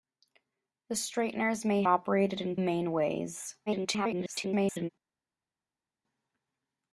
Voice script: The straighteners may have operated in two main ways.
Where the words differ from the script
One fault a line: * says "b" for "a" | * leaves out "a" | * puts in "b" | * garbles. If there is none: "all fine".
* leaves out "have"
* leaves out "two"
* garbles